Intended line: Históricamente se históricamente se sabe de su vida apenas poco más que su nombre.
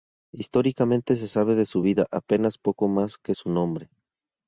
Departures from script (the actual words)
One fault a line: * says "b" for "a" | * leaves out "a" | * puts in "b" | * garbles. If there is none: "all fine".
* leaves out "históricamente se"